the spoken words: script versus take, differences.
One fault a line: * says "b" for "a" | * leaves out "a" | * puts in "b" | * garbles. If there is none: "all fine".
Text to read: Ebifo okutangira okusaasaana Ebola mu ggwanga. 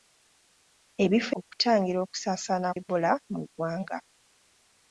all fine